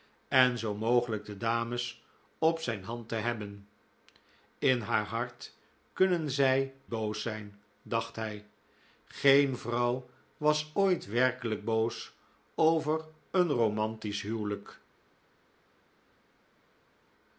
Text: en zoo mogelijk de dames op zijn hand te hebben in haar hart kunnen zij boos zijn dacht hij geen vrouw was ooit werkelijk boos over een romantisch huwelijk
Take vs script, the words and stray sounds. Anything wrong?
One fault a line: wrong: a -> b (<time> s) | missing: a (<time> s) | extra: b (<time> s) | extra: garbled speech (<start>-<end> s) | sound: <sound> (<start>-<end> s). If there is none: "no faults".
no faults